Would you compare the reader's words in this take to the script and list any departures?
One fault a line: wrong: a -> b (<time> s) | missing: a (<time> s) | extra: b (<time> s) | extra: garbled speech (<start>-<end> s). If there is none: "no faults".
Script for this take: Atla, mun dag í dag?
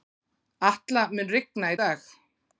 wrong: dag -> rigna (1.4 s)